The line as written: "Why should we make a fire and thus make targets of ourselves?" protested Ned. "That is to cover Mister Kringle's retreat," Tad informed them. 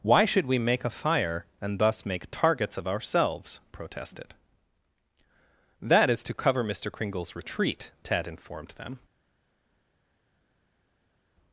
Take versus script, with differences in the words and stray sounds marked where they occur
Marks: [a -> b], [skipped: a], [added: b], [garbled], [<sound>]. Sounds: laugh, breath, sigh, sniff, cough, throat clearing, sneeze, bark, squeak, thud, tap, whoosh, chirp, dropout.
"Why should we make a fire and thus make targets of ourselves?" protested [skipped: Ned.] "That is to cover Mister Kringle's retreat," Tad informed them.